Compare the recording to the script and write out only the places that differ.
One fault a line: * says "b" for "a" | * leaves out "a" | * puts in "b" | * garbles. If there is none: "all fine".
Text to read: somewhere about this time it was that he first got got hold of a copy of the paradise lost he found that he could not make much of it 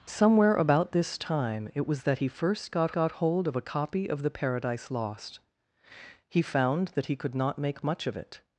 all fine